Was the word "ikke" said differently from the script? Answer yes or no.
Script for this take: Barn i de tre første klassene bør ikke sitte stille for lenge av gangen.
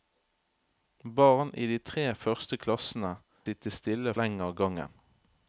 yes